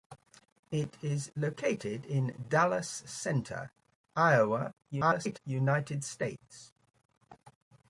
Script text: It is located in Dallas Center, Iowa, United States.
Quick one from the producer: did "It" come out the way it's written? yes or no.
yes